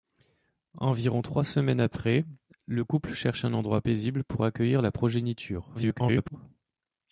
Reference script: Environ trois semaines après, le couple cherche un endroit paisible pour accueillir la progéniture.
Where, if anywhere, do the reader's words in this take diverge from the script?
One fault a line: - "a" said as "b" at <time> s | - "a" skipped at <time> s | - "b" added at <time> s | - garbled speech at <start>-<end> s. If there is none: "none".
- garbled speech at 5.7-6.4 s